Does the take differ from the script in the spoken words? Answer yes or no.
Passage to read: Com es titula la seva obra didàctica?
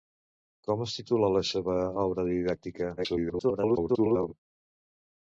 yes